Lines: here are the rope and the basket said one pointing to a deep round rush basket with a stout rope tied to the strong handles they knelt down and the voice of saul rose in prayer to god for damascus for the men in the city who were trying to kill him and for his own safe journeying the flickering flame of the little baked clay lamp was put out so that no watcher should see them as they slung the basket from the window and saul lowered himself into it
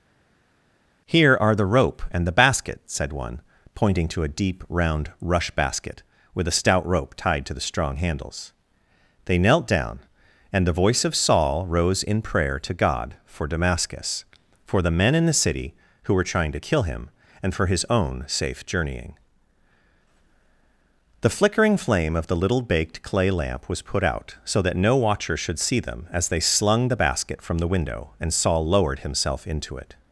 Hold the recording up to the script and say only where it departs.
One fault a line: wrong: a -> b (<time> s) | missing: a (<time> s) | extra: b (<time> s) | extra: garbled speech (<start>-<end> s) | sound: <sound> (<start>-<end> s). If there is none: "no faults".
no faults